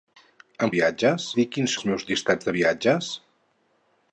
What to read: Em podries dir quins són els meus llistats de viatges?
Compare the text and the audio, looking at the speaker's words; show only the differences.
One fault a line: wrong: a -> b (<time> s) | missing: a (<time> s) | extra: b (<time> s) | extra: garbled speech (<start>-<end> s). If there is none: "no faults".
wrong: podries -> viatges (0.8 s)
missing: són (1.8 s)